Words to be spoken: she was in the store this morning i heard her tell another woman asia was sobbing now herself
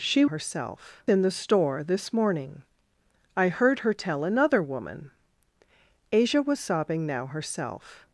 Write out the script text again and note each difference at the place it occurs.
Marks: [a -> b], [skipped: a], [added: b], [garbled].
she [was -> herself] in the store this morning i heard her tell another woman asia was sobbing now herself